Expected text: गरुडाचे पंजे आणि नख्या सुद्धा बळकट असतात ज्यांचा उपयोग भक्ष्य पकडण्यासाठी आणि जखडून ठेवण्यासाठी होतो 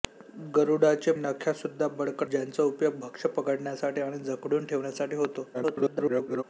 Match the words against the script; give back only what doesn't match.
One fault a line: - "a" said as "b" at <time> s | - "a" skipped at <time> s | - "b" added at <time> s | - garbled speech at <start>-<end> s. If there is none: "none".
- "पंजे आणि" skipped at 1.1 s
- "असतात" skipped at 2.3 s
- garbled speech at 5.5-6.4 s